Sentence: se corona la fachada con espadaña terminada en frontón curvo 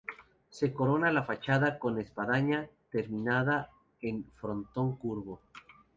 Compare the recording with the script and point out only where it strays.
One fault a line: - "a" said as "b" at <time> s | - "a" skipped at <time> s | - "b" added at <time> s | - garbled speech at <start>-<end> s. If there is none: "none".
none